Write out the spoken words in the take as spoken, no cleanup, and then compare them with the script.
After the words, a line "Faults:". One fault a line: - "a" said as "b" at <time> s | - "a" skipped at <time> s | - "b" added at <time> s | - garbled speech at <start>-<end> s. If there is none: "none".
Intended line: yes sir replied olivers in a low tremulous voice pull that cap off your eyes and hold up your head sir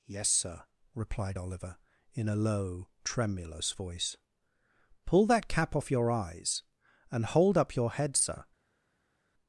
yes sir replied oliver in a low tremulous voice pull that cap off your eyes and hold up your head sir
Faults:
- "olivers" said as "oliver" at 1.4 s